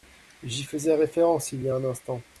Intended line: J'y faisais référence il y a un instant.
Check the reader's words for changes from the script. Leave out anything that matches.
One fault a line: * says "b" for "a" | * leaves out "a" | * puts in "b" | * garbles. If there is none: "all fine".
all fine